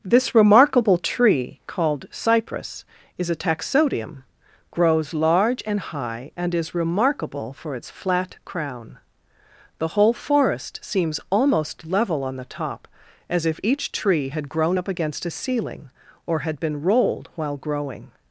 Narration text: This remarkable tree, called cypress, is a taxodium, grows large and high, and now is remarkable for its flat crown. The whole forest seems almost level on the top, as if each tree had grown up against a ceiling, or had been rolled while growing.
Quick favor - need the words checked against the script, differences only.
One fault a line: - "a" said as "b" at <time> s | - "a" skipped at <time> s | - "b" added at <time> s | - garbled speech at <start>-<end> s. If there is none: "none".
- "now" skipped at 6.5 s